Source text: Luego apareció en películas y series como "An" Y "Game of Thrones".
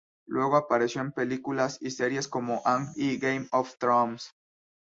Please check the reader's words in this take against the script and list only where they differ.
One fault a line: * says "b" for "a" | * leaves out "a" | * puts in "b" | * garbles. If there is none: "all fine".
all fine